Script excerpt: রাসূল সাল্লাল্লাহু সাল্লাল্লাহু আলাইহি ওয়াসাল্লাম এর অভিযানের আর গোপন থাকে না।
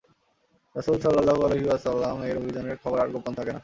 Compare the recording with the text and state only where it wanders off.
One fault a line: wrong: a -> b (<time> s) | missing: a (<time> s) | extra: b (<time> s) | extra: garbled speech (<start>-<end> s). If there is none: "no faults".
missing: সাল্লাল্লাহু (1.4 s)
extra: খবর (2.8 s)